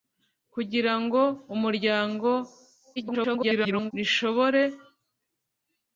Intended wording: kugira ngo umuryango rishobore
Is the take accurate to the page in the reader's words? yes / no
no